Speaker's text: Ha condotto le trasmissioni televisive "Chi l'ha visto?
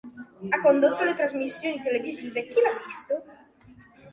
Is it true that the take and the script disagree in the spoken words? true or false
false